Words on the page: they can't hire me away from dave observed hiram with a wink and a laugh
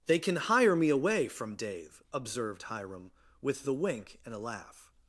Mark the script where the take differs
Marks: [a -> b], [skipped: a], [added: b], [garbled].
they [can't -> can] hire me away from dave observed hiram with [a -> the] wink and a laugh